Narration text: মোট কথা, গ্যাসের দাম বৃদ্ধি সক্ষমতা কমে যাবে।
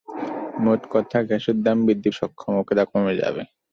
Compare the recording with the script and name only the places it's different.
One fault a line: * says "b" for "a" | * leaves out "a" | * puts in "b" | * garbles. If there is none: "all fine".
all fine